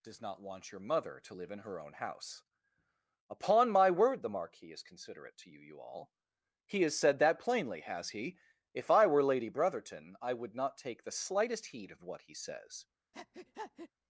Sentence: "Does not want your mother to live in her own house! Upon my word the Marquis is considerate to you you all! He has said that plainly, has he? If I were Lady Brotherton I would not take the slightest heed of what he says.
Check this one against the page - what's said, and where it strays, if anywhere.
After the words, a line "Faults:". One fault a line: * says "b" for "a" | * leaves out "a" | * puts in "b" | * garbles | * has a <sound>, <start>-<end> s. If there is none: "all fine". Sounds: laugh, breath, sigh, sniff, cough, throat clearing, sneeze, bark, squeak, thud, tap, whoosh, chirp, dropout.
"Does not want your mother to live in her own house! Upon my word the Marquis is considerate to you you all! He has said that plainly, has he? If I were Lady Brotherton I would not take the slightest heed of what he says.
Faults:
* has a breath, 13.1-13.9 s